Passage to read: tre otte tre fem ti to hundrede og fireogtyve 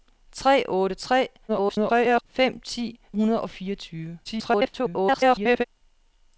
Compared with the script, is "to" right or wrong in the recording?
wrong